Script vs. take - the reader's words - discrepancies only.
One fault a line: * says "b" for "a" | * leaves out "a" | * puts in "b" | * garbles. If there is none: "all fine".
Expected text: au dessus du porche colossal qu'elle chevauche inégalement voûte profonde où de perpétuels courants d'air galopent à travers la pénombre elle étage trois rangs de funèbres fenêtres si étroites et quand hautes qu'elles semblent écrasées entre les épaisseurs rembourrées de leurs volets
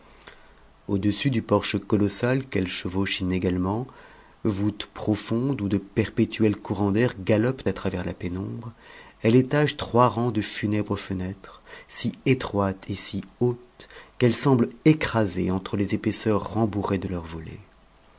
* says "si" for "quand"